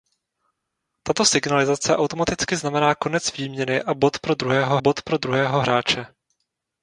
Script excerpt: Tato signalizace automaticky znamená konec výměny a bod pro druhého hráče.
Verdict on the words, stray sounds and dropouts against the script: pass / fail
fail